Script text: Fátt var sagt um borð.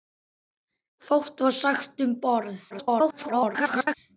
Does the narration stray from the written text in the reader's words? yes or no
yes